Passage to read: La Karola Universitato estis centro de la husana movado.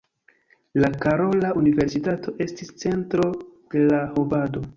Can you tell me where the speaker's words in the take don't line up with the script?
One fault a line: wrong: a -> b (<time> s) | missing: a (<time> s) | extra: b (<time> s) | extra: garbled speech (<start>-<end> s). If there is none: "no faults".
missing: husana (4.0 s)